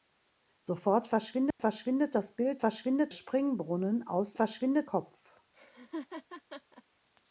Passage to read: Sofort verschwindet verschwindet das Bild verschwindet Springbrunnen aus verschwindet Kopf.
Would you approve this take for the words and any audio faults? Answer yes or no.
no